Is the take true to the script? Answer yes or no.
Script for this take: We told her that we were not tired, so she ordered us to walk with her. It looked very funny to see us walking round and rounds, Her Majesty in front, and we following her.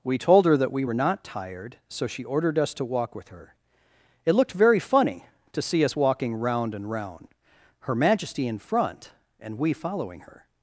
no